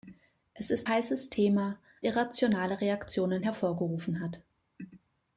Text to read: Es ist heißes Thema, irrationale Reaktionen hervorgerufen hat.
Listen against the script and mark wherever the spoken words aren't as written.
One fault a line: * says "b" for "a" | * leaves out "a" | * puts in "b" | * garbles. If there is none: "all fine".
all fine